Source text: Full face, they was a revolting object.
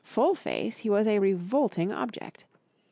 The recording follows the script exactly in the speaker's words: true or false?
false